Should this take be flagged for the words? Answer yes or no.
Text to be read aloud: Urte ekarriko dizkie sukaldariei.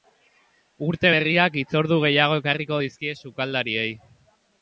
yes